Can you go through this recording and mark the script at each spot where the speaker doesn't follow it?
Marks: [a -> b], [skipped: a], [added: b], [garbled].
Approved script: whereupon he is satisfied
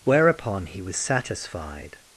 whereupon he [is -> was] satisfied